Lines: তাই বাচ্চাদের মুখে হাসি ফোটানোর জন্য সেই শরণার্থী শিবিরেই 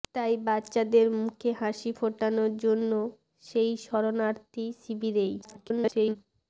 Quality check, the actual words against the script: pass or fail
fail